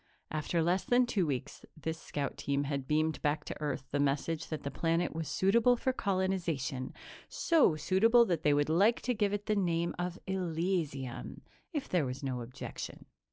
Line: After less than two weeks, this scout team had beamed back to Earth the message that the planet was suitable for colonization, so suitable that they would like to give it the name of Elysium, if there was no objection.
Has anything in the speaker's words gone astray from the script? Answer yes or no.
no